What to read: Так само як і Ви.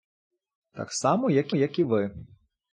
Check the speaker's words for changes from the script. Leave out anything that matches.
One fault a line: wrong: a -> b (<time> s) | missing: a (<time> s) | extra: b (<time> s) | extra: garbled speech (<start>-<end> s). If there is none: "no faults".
extra: як (1.5 s)